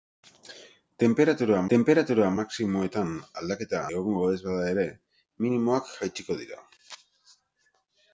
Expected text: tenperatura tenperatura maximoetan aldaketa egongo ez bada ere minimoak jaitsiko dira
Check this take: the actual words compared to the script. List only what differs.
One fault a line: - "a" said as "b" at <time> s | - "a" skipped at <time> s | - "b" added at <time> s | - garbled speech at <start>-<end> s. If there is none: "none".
none